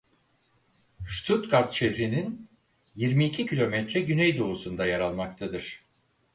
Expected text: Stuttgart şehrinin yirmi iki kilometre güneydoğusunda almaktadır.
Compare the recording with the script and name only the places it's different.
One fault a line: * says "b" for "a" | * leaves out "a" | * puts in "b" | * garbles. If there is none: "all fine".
* puts in "yer"